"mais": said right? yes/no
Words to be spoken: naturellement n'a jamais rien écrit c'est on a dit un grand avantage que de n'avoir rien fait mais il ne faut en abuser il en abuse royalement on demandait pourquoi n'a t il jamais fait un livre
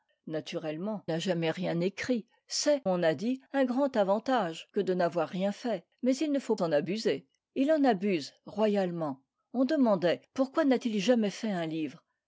yes